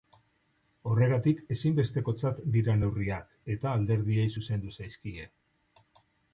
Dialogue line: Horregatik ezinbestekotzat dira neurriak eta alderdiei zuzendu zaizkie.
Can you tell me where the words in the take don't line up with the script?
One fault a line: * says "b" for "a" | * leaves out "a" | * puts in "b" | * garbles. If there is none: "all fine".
all fine